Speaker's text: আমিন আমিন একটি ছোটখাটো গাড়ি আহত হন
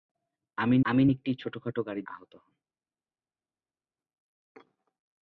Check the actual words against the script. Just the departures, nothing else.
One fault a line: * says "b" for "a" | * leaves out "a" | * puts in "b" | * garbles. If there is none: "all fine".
all fine